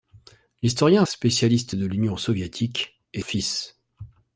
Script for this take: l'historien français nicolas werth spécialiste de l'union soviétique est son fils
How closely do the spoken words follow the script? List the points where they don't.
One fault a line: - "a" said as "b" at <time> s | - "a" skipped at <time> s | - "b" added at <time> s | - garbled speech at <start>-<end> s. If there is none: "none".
- "français nicolas werth" skipped at 1.1 s
- "son" skipped at 3.2 s